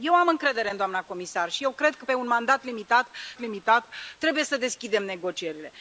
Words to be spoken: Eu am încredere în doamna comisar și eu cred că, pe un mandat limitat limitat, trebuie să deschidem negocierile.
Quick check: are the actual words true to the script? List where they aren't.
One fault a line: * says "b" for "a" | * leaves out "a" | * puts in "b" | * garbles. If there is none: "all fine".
all fine